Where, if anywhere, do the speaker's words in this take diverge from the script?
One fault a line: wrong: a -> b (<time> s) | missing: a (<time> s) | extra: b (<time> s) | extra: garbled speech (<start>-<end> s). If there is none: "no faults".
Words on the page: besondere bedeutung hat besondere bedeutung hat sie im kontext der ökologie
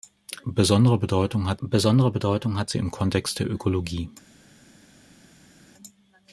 no faults